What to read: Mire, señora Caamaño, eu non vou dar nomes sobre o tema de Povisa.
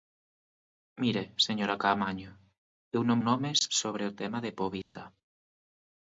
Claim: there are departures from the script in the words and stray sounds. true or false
true